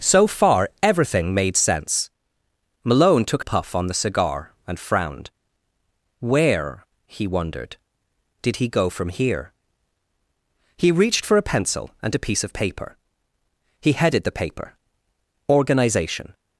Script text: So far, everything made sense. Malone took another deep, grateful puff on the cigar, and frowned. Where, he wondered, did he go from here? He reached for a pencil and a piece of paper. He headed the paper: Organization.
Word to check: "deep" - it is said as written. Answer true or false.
false